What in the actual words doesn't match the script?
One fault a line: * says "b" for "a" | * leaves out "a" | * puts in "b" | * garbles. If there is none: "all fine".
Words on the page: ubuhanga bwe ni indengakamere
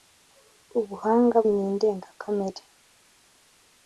* leaves out "bwe"